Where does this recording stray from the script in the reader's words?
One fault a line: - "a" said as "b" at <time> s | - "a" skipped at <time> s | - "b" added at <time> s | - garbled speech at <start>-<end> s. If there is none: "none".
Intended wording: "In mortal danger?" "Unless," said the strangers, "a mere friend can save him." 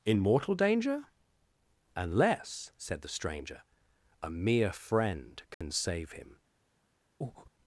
- "strangers" said as "stranger" at 3.1 s